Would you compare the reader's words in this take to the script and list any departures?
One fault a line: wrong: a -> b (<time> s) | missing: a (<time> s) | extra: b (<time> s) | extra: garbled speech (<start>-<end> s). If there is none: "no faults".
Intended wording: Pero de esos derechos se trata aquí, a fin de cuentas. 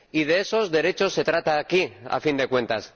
wrong: Pero -> Y (0.1 s)